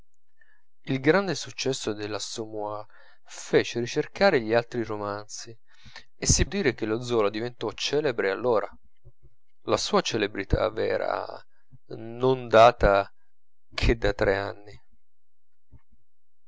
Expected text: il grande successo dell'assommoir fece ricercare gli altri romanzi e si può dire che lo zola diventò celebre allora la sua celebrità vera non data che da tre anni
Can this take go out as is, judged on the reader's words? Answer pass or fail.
fail